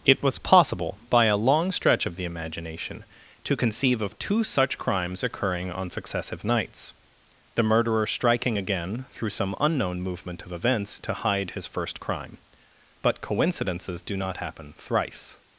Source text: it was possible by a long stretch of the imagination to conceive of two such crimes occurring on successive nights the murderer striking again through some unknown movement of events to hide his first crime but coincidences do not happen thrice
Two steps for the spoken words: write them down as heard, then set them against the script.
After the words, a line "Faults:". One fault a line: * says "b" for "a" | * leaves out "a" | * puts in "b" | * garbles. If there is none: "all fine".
it was possible by a long stretch of the imagination to conceive of two such crimes occurring on successive nights the murderer striking again through some unknown movement of events to hide his first crime but coincidences do not happen thrice
Faults:
all fine